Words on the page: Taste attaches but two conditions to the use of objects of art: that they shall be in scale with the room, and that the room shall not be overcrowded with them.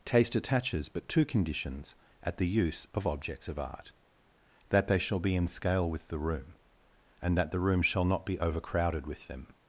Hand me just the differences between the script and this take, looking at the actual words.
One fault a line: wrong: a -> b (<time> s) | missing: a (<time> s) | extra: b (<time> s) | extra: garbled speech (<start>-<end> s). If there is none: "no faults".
wrong: to -> at (2.2 s)